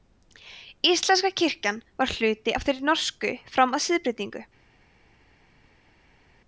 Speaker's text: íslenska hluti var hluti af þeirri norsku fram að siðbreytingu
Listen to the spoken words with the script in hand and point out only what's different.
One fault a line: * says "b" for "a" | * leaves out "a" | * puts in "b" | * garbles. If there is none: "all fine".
* says "kirkjan" for "hluti"